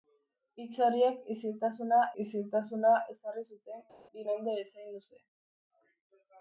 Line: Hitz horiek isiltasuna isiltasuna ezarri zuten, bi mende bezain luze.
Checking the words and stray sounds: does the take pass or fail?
pass